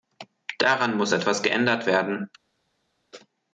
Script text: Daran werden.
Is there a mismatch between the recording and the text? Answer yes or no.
yes